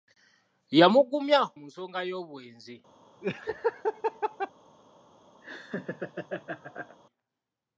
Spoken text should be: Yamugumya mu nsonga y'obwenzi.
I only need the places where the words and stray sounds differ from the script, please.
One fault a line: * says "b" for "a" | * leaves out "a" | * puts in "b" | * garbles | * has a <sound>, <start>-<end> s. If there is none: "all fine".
* has a laugh, 3.2-4.5 s
* has a laugh, 5.4-7.0 s